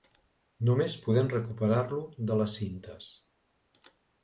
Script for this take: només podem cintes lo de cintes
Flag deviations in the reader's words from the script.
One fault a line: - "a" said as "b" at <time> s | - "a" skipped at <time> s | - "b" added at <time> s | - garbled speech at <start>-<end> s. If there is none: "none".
- "cintes" said as "recuperar" at 1.3 s
- "les" added at 2.4 s